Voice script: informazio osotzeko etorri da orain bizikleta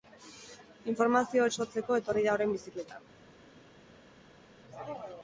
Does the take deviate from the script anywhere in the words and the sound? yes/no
no